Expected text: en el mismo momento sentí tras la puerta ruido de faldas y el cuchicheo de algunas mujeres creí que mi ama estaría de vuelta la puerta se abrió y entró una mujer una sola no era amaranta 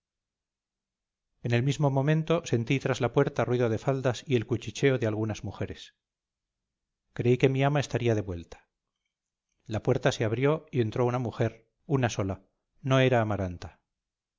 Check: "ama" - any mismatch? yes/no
no